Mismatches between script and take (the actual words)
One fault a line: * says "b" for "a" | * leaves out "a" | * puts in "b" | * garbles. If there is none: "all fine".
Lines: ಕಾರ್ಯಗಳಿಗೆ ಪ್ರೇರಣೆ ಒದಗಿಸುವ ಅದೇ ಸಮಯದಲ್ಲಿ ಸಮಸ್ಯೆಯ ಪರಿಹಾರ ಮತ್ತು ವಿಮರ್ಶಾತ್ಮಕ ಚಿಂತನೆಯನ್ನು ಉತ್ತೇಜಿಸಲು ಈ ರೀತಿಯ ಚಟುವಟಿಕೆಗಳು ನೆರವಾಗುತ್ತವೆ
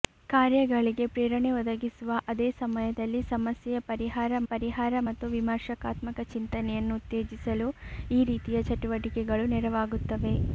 * puts in "ಪರಿಹಾರ"